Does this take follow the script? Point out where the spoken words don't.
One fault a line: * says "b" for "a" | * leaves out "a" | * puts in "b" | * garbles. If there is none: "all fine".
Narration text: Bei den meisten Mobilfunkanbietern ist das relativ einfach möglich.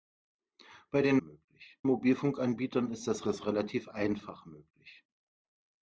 * says "möglich" for "meisten"
* puts in "das"